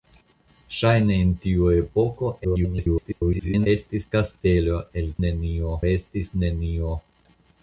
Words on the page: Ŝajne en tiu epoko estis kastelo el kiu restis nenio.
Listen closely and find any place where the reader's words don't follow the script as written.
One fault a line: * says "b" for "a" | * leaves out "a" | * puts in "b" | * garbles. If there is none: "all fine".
* garbles
* says "nenio" for "kiu"